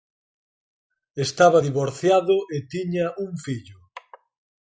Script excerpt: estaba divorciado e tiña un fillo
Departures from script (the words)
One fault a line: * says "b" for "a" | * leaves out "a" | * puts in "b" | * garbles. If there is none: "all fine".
all fine